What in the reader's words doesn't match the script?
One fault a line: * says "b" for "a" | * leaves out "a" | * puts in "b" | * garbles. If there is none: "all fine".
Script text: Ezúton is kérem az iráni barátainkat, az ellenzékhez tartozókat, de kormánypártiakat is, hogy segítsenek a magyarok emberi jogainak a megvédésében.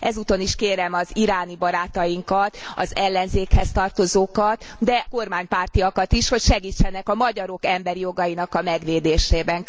all fine